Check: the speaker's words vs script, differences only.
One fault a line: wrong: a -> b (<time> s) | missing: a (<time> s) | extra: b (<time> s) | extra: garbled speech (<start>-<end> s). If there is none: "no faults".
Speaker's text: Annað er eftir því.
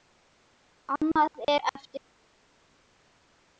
no faults